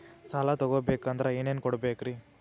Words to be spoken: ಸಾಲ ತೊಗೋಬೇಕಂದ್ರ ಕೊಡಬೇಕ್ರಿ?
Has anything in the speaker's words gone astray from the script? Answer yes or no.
yes